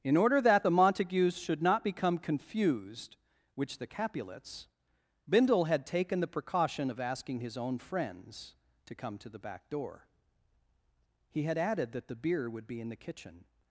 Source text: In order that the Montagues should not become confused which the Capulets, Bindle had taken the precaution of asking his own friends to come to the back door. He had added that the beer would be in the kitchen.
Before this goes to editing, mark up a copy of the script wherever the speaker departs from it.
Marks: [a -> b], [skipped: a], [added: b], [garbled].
In order that the Montagues should not become confused which the Capulets, Bindle had taken the precaution of asking his own friends to come to the back door. He had added that the beer would be in the kitchen.